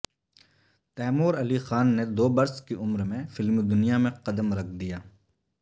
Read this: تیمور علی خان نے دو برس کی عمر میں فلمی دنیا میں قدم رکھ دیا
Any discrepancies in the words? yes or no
no